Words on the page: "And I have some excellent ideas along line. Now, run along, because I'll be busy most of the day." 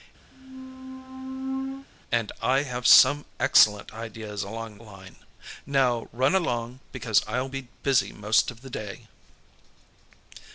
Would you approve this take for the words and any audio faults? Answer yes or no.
no